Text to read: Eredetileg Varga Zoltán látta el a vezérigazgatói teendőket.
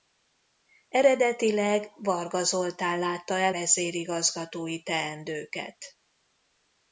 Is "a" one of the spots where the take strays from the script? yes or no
yes